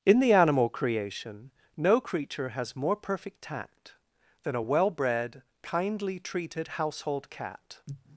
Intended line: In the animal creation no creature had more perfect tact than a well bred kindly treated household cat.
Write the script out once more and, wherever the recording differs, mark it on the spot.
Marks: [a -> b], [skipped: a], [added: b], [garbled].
In the animal creation no creature [had -> has] more perfect tact than a well bred kindly treated household cat.